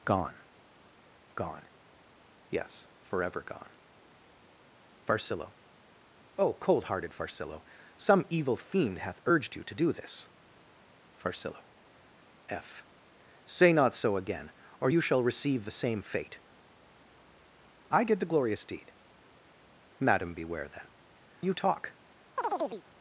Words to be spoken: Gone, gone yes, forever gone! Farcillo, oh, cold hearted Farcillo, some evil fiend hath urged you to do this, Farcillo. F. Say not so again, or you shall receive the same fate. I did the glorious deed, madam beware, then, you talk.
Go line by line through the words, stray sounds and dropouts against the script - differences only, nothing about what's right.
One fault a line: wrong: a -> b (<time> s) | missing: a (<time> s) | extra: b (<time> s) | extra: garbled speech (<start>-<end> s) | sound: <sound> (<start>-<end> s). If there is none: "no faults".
sound: chirp (22.4-22.8 s)